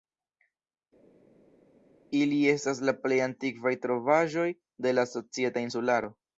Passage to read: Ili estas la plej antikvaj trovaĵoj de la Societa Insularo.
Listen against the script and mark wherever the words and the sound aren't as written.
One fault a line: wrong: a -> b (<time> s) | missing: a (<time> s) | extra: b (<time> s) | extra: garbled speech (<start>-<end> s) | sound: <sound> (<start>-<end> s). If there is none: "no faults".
no faults